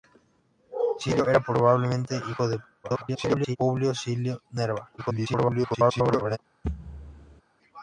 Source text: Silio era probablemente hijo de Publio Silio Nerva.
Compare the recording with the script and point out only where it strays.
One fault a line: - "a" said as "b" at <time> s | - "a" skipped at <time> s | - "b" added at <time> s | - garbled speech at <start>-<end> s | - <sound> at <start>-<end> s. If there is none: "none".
- garbled speech at 2.8-3.6 s
- garbled speech at 5.0-6.4 s
- thud at 6.6-7.4 s